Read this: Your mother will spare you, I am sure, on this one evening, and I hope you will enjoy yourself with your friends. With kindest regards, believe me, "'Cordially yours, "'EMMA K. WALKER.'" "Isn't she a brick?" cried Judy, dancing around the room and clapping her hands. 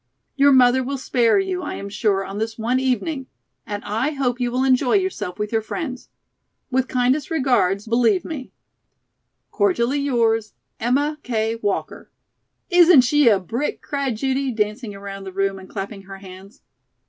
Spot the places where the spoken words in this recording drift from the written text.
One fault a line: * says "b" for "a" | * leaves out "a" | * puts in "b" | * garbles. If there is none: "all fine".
all fine